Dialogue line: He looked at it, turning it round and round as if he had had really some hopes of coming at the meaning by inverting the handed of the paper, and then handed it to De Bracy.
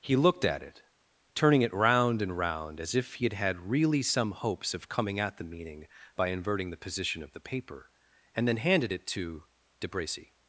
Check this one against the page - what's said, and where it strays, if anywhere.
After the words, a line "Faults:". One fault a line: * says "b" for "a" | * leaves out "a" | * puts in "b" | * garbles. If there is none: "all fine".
He looked at it, turning it round and round as if he had had really some hopes of coming at the meaning by inverting the position of the paper, and then handed it to De Bracy.
Faults:
* says "position" for "handed"